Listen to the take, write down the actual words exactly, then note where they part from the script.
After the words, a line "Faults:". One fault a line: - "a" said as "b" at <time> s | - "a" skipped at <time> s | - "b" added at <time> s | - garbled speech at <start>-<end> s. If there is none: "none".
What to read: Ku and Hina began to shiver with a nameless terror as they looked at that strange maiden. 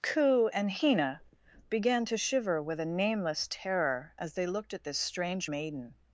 Ku and Hina began to shiver with a nameless terror as they looked at this strange maiden.
Faults:
- "that" said as "this" at 4.8 s